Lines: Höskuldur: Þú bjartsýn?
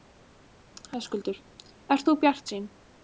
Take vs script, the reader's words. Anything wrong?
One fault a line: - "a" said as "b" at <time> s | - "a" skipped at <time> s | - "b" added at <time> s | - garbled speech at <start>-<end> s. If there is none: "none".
- "Ert" added at 2.0 s